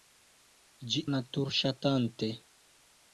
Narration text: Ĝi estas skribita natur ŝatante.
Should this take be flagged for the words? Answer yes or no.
yes